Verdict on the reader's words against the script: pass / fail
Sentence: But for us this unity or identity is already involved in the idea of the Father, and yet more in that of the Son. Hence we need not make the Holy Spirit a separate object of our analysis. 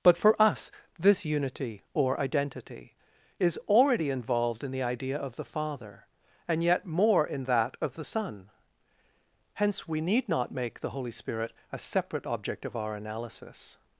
pass